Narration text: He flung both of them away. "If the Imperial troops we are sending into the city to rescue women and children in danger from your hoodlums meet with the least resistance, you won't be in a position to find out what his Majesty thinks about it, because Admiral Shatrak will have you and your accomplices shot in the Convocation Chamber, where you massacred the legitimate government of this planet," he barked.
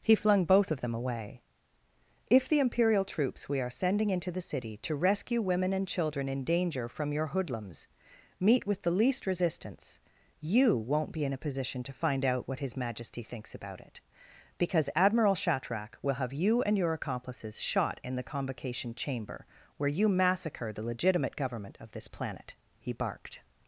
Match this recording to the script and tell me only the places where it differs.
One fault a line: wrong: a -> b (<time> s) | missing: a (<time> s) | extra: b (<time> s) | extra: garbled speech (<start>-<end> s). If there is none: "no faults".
no faults